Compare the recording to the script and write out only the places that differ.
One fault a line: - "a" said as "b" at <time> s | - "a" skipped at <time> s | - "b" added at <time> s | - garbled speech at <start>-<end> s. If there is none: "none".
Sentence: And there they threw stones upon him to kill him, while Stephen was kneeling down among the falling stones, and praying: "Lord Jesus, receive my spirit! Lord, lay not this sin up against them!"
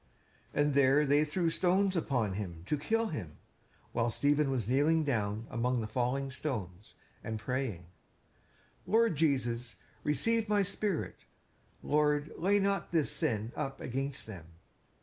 none